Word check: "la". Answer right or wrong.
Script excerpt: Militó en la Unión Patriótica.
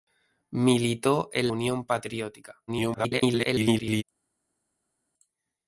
wrong